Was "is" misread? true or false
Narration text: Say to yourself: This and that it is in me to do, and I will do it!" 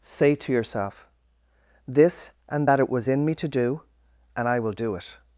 true